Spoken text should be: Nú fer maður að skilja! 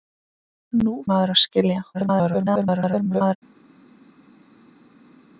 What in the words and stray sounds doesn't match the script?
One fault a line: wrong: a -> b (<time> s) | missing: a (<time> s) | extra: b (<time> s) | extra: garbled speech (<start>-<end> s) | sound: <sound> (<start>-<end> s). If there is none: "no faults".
missing: fer (0.9 s)
extra: garbled speech (1.9-3.4 s)